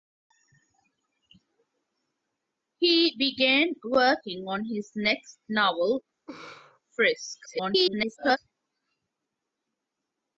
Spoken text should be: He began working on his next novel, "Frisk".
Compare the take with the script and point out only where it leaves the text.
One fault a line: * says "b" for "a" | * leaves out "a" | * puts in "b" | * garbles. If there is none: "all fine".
* garbles